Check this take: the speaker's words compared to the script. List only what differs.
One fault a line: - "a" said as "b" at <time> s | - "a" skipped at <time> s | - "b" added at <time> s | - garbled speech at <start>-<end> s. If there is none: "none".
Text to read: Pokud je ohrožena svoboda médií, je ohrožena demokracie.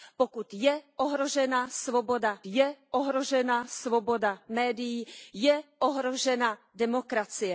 - "je ohrožena svoboda" added at 2.5 s